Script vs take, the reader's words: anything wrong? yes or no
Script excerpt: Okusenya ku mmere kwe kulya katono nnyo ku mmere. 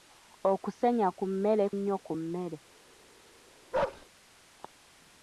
yes